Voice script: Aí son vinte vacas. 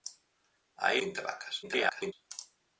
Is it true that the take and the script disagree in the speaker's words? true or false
true